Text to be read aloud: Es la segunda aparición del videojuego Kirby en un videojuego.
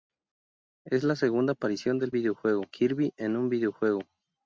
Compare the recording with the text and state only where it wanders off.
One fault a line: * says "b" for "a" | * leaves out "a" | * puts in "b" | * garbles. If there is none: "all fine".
all fine